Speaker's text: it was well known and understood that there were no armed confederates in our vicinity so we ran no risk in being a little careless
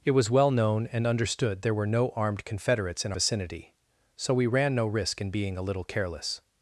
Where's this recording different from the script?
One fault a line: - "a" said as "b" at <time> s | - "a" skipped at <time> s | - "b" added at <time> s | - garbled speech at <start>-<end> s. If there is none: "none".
- "that" skipped at 1.6 s
- "our" skipped at 3.1 s